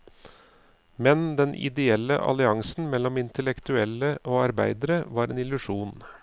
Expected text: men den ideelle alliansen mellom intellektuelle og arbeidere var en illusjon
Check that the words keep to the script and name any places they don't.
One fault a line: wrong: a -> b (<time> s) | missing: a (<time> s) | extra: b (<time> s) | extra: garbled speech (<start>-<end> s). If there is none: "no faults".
no faults